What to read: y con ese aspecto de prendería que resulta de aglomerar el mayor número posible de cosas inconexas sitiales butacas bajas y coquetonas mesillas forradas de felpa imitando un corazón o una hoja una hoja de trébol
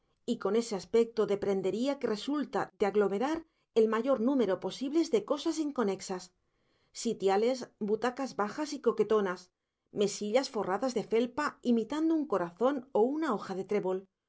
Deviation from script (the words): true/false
true